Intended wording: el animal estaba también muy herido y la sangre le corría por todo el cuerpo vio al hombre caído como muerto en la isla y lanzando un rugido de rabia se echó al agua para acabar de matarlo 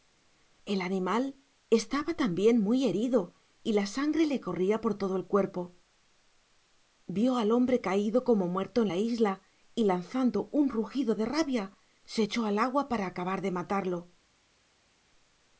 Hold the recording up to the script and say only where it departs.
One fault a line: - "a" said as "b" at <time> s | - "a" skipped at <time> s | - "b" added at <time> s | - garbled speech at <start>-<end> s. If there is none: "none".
none